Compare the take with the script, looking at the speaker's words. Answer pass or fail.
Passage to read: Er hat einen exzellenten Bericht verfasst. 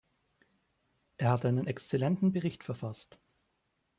pass